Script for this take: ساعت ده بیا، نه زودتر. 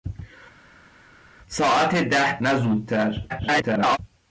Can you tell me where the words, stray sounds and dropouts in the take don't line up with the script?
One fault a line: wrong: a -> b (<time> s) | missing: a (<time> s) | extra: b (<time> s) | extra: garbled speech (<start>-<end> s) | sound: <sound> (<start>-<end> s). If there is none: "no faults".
missing: بیا (2.4 s)
extra: garbled speech (3.3-4.0 s)